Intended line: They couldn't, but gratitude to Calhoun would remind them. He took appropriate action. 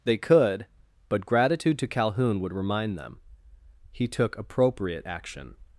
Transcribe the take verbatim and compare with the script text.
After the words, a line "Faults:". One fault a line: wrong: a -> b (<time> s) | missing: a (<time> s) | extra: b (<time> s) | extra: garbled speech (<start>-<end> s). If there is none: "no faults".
They could, but gratitude to Calhoun would remind them. He took appropriate action.
Faults:
wrong: couldn't -> could (0.2 s)